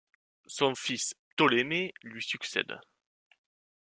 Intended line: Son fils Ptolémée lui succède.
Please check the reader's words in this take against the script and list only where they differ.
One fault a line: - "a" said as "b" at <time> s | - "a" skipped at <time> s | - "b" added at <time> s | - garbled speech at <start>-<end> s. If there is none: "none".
none